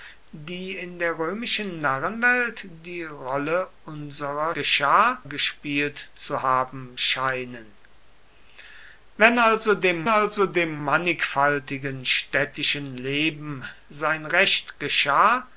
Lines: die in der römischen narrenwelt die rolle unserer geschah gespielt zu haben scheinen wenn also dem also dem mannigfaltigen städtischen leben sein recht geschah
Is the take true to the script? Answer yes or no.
yes